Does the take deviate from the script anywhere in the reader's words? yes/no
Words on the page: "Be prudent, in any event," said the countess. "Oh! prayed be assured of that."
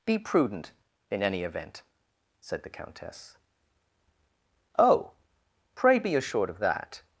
yes